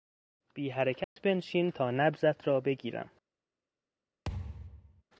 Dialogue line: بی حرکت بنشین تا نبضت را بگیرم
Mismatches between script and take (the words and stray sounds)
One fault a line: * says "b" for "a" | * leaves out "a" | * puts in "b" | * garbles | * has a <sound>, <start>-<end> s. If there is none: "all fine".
* has a dropout, 1.0-1.2 s
* has a thud, 4.3-5.0 s